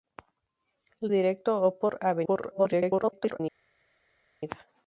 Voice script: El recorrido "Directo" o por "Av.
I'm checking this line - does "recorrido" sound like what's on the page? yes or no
no